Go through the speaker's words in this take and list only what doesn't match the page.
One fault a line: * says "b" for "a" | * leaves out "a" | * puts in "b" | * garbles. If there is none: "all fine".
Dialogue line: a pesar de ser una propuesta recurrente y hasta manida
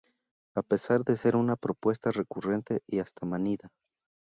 all fine